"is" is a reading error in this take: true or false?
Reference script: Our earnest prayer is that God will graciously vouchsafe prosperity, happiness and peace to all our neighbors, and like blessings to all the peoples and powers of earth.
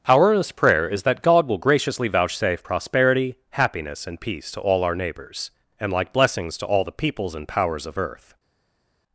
false